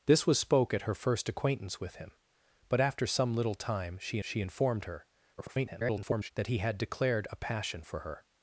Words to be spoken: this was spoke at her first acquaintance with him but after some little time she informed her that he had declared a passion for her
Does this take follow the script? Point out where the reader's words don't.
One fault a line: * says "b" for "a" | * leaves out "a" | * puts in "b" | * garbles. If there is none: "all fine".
* puts in "she"
* garbles